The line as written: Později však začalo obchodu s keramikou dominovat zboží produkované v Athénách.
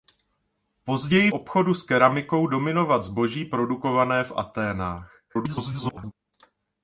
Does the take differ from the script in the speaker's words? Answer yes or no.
yes